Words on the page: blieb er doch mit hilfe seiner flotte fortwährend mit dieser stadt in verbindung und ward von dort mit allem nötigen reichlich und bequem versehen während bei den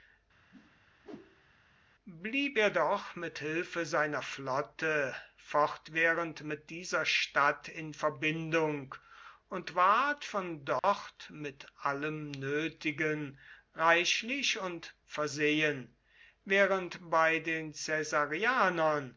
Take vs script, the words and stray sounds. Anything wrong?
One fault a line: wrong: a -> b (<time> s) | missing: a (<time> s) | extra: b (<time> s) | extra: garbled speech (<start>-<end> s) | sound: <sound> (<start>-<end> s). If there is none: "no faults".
sound: whoosh (0.5-1.6 s)
sound: dropout (10.8-10.8 s)
missing: bequem (14.9 s)